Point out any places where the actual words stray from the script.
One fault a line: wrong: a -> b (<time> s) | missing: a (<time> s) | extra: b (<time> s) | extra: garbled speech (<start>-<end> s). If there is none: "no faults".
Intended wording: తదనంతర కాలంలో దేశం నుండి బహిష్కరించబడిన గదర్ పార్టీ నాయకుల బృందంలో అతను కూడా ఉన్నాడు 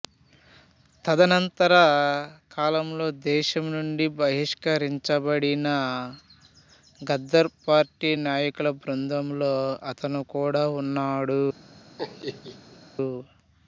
no faults